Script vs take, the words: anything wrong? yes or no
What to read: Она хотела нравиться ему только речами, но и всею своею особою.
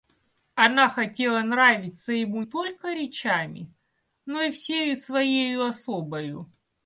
no